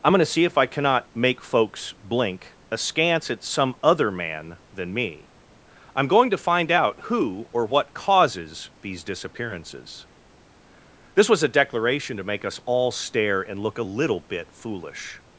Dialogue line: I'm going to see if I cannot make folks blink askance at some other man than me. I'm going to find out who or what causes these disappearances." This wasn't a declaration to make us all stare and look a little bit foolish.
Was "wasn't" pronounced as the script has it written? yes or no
no